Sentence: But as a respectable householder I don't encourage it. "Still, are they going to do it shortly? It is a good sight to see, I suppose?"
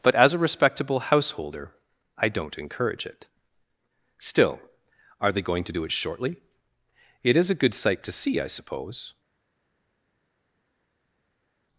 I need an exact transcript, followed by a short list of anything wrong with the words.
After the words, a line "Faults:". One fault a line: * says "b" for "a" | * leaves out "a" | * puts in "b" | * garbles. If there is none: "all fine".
But as a respectable householder I don't encourage it. "Still, are they going to do it shortly? It is a good sight to see, I suppose?"
Faults:
all fine